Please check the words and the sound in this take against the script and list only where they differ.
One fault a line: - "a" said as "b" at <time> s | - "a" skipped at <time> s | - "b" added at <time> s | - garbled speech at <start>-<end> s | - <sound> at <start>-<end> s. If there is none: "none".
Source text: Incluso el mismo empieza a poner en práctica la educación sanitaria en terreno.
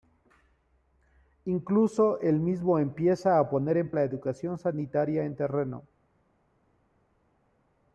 - "práctica" skipped at 3.9 s